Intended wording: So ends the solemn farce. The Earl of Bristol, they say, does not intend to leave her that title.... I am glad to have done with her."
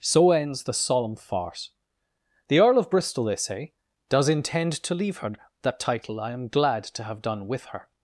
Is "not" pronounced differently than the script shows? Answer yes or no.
yes